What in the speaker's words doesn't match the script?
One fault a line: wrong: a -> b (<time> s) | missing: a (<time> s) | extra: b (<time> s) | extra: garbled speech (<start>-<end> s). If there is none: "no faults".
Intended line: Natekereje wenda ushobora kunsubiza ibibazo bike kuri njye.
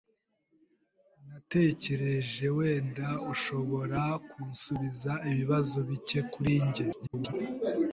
extra: garbled speech (6.9-7.3 s)